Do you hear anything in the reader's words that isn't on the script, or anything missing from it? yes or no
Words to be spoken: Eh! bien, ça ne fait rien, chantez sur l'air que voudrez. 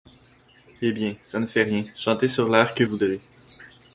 no